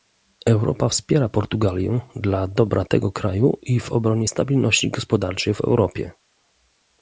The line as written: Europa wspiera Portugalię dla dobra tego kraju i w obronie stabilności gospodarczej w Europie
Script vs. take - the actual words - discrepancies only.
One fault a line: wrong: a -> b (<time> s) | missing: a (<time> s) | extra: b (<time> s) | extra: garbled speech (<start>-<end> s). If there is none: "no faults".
no faults